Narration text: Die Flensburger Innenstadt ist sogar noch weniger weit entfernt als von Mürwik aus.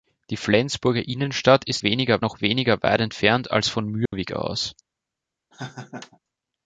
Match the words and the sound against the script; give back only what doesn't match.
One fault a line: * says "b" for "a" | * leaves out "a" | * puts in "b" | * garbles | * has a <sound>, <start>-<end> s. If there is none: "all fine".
* says "weniger" for "sogar"
* has a dropout, 4.1-4.1 s
* has a laugh, 5.5-6.2 s